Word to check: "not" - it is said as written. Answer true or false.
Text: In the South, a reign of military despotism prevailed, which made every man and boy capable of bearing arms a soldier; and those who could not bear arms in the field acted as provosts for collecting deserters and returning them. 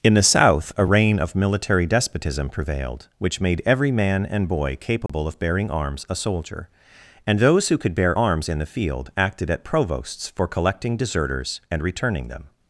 false